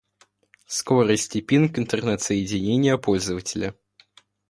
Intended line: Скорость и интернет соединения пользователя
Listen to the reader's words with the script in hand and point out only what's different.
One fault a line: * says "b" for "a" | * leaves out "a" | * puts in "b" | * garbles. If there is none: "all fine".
* puts in "пинг"